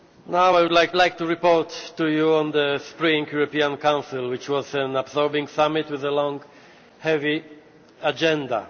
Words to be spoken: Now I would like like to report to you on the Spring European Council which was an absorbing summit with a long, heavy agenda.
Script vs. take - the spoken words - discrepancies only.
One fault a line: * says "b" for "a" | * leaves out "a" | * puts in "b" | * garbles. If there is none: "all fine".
all fine